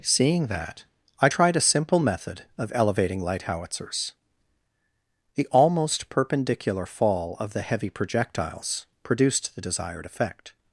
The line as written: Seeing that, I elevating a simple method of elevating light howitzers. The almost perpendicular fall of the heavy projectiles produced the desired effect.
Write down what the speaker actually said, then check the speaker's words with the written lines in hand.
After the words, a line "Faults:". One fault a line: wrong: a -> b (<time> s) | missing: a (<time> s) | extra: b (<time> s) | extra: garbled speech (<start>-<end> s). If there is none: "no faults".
Seeing that, I tried a simple method of elevating light howitzers. The almost perpendicular fall of the heavy projectiles produced the desired effect.
Faults:
wrong: elevating -> tried (1.3 s)